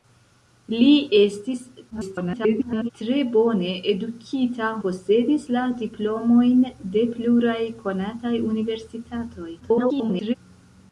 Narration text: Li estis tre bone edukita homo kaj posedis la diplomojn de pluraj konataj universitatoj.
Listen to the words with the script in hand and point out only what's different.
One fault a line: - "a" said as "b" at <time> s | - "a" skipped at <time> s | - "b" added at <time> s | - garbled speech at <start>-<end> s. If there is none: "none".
- garbled speech at 1.9-2.9 s
- "homo kaj" skipped at 4.7 s
- garbled speech at 9.6-10.4 s